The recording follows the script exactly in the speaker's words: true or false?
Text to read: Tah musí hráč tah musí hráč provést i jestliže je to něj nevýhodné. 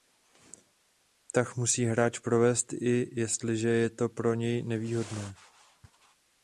false